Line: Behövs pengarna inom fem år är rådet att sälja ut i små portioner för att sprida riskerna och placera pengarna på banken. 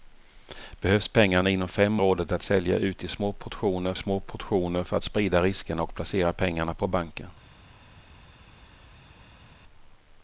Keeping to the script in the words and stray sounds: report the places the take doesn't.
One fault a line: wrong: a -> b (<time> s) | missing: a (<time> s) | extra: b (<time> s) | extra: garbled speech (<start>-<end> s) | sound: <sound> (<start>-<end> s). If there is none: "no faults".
missing: år är (2.0 s)
extra: små portioner (3.9 s)